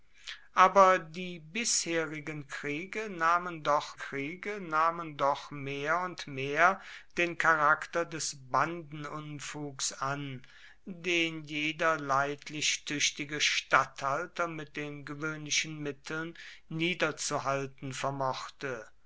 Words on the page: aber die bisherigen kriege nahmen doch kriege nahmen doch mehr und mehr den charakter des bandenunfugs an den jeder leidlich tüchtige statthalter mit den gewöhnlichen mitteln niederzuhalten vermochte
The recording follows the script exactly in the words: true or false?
true